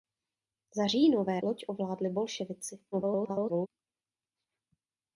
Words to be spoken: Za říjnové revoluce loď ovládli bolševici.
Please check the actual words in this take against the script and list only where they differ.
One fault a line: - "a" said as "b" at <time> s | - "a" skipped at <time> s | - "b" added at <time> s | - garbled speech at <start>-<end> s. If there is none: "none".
- "revoluce" skipped at 1.4 s
- garbled speech at 2.9-3.7 s